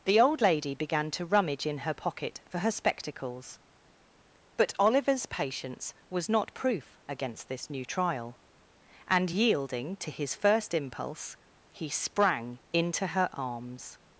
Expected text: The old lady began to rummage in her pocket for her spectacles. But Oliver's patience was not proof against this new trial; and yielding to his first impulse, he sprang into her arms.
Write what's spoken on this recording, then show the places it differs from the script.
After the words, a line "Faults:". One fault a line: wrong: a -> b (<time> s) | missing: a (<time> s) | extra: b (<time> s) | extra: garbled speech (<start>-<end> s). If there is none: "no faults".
The old lady began to rummage in her pocket for her spectacles. But Oliver's patience was not proof against this new trial; and yielding to his first impulse, he sprang into her arms.
Faults:
no faults